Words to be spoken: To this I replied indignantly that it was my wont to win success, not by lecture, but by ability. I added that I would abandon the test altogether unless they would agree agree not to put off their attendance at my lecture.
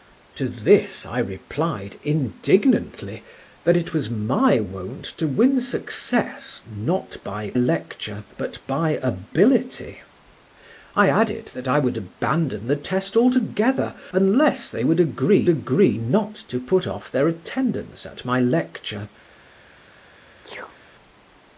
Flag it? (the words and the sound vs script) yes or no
yes